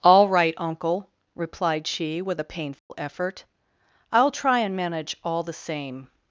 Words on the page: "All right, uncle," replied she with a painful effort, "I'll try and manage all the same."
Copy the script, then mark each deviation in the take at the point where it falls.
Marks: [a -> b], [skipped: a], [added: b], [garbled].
"All right, uncle," replied she with a painful effort, "I'll try and manage all the same."